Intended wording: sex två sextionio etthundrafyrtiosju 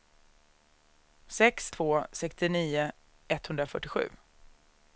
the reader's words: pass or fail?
pass